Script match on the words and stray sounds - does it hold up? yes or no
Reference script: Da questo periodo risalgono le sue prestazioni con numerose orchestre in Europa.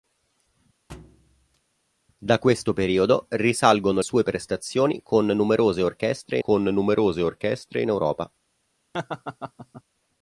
no